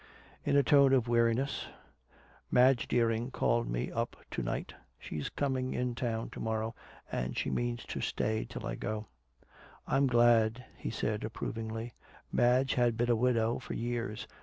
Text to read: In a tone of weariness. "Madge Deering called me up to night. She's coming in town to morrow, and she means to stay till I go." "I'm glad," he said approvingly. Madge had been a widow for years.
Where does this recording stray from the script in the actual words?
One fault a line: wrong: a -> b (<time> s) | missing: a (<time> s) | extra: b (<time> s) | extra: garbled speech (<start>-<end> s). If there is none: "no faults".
no faults